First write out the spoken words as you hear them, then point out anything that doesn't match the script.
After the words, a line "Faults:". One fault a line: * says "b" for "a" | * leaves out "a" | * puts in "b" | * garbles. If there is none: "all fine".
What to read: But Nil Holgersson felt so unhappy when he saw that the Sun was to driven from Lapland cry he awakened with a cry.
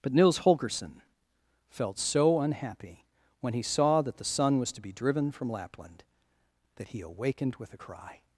But Nils Holgersson felt so unhappy when he saw that the Sun was to be driven from Lapland that he awakened with a cry.
Faults:
* says "Nils" for "Nil"
* puts in "be"
* says "that" for "cry"